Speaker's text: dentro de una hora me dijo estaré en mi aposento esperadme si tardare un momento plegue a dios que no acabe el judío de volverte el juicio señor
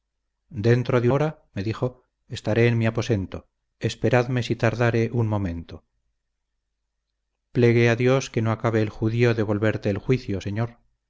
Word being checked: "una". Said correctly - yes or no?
no